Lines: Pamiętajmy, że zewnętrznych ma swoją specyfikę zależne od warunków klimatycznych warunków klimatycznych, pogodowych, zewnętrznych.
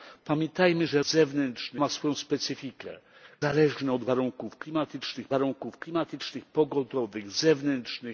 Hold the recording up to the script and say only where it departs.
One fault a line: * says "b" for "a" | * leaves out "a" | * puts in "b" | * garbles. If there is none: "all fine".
all fine